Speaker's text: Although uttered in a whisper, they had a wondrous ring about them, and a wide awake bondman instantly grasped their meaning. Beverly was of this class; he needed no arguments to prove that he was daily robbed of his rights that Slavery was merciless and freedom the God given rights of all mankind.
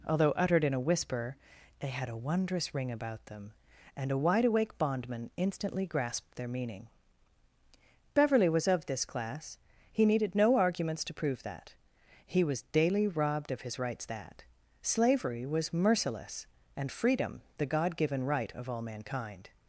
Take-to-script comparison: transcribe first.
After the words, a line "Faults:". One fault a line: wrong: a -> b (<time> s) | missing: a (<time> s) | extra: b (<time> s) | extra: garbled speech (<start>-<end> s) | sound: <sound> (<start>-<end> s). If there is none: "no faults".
Although uttered in a whisper, they had a wondrous ring about them, and a wide awake bondman instantly grasped their meaning. Beverly was of this class; he needed no arguments to prove that he was daily robbed of his rights that Slavery was merciless and freedom the God given right of all mankind.
Faults:
wrong: rights -> right (18.2 s)